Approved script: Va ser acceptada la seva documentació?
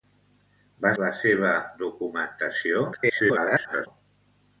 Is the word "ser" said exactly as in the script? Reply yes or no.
no